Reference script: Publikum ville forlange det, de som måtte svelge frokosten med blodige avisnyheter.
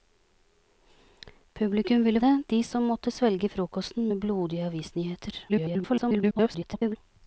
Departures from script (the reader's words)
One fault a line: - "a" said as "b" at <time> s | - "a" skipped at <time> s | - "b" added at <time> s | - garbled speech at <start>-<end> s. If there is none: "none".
- "forlange" skipped at 2.2 s
- garbled speech at 5.5-7.0 s